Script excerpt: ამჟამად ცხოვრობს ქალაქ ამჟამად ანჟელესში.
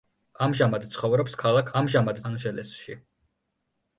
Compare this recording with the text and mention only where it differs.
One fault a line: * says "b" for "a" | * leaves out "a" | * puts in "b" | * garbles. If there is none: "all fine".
all fine